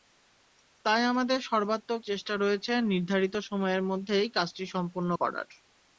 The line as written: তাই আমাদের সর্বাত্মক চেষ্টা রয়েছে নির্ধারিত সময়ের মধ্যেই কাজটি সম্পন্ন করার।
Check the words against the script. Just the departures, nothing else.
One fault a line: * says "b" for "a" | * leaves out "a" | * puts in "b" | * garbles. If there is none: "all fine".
all fine